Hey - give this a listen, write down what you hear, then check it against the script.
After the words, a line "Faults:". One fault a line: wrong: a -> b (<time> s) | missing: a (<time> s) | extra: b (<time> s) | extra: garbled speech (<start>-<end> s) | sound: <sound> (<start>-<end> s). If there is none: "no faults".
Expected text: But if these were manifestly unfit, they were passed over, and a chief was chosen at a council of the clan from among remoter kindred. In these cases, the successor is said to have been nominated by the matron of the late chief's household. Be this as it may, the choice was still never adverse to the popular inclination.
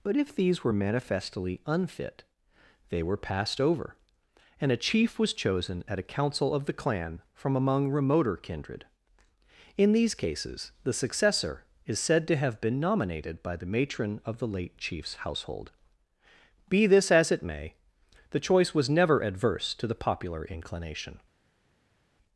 But if these were manifestly unfit, they were passed over, and a chief was chosen at a council of the clan from among remoter kindred. In these cases, the successor is said to have been nominated by the matron of the late chief's household. Be this as it may, the choice was never adverse to the popular inclination.
Faults:
missing: still (18.9 s)